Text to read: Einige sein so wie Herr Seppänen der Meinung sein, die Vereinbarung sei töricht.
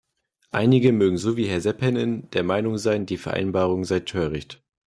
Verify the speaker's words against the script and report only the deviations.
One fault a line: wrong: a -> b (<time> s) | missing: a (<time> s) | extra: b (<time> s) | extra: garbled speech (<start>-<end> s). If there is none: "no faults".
wrong: sein -> mögen (0.9 s)